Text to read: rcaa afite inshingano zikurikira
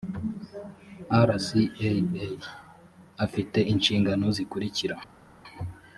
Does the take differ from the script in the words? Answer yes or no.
no